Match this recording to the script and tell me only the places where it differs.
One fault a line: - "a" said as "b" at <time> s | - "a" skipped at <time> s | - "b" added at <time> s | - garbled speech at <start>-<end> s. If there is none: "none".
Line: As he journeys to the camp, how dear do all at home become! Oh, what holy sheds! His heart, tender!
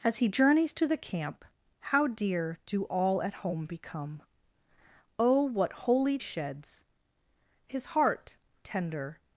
none